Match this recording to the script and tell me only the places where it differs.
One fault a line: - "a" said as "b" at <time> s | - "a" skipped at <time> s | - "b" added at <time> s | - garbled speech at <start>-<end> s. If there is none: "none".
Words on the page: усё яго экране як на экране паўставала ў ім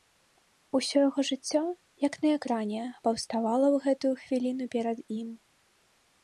- "экране" said as "жыццё" at 1.3 s
- "гэтую хвіліну перад" added at 3.9 s